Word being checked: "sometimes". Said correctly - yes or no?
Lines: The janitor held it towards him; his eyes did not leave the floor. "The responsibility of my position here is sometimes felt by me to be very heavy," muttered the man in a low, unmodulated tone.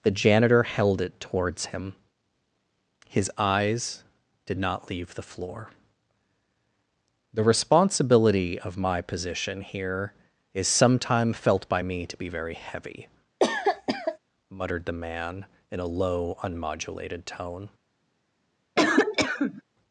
no